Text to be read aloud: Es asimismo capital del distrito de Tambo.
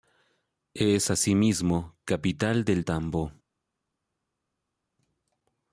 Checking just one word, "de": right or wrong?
wrong